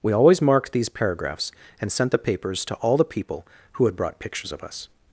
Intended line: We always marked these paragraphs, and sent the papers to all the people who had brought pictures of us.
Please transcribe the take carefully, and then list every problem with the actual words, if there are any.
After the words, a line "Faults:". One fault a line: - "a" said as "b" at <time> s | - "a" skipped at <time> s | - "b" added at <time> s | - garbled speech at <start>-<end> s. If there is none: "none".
We always marked these paragraphs, and sent the papers to all the people who had brought pictures of us.
Faults:
none